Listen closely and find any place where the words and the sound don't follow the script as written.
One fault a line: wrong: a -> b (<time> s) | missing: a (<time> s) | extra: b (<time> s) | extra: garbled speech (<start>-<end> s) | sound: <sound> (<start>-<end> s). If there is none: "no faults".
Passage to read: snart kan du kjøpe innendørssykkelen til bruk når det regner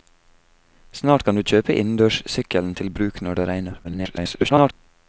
extra: garbled speech (3.8-4.7 s)